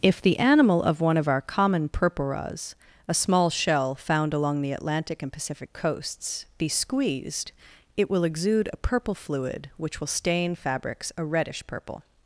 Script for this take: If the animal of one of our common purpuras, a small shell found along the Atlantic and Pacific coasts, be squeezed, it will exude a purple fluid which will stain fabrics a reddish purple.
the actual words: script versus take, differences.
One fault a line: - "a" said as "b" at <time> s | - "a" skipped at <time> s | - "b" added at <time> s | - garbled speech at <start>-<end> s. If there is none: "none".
none